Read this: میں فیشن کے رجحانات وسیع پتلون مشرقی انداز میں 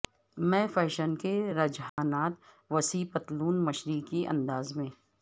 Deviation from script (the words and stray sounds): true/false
true